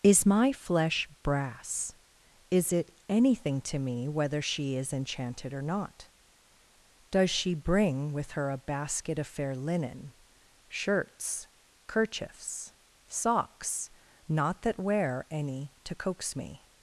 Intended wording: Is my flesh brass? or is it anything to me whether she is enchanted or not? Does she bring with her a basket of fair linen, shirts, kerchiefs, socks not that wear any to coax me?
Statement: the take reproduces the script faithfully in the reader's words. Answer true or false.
false